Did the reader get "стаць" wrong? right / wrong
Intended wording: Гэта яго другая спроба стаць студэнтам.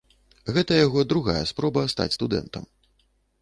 right